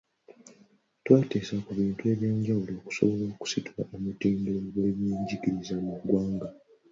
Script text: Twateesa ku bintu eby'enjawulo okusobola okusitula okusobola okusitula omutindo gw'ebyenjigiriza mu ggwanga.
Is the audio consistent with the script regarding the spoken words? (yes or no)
no